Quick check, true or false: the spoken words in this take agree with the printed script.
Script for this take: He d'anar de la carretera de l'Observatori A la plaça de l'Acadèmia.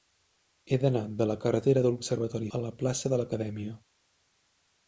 true